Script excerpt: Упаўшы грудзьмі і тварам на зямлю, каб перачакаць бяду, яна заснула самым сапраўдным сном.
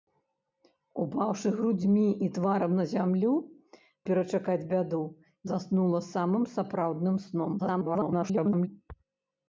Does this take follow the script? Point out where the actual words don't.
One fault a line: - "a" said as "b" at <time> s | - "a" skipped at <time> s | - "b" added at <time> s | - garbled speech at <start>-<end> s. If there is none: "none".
- "каб" skipped at 3.3 s
- "яна" skipped at 5.0 s
- garbled speech at 7.6-8.7 s